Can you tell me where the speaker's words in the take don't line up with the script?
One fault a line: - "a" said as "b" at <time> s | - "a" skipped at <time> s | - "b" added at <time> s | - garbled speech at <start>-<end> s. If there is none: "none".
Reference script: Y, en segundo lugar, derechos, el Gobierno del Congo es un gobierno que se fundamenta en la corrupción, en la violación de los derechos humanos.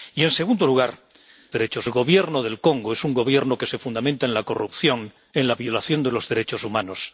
none